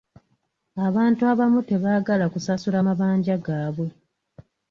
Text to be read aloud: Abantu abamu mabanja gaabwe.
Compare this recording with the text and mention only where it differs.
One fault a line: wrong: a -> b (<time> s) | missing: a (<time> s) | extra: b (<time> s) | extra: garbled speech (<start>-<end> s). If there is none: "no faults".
extra: tebaagala kusasula (1.7 s)